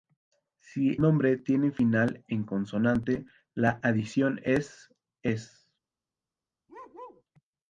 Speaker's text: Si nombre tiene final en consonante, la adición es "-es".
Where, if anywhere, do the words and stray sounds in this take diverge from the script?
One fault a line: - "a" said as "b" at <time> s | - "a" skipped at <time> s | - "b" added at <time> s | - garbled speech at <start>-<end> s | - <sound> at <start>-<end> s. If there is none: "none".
- bark at 6.7-7.2 s